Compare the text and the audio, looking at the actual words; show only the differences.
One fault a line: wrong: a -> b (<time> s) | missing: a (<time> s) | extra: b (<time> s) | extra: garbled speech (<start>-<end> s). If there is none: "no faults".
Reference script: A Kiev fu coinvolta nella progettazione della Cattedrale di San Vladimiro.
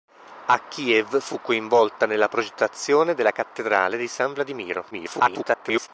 extra: garbled speech (4.9-5.9 s)